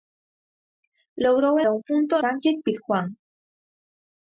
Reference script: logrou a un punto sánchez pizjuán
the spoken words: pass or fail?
pass